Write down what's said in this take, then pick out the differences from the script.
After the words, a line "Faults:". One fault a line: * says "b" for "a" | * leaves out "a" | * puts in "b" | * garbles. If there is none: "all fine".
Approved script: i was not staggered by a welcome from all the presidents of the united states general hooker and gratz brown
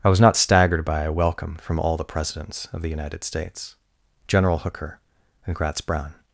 i was not staggered by a welcome from all the presidents of the united states general hooker and gratz brown
Faults:
all fine